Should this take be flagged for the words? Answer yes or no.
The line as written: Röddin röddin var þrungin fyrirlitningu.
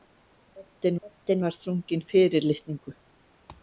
no